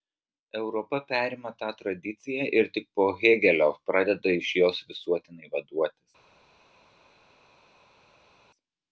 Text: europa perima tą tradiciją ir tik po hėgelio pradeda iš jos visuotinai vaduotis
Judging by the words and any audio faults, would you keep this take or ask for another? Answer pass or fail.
pass